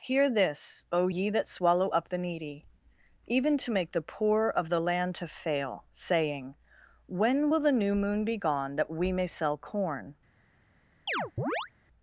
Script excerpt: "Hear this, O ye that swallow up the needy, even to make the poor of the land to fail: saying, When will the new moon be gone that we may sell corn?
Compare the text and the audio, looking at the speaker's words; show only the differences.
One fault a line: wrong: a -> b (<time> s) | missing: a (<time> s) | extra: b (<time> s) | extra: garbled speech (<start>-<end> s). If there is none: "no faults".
no faults